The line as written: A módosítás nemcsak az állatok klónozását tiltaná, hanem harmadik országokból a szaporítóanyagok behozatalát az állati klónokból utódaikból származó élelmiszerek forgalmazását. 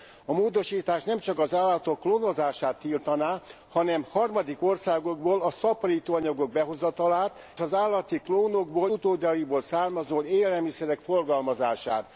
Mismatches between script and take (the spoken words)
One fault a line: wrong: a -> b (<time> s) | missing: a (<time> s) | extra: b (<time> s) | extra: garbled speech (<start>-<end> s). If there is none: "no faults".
no faults